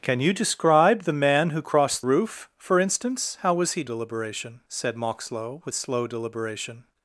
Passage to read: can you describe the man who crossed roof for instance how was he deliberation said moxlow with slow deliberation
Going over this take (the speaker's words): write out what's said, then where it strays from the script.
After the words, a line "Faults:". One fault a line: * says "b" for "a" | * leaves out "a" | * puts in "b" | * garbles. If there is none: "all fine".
can you describe the man who crossed roof for instance how was he deliberation said moxlow with slow deliberation
Faults:
all fine